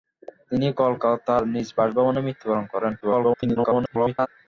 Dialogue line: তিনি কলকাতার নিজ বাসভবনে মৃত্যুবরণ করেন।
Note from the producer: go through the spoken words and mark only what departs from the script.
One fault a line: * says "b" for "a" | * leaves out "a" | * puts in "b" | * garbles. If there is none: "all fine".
* garbles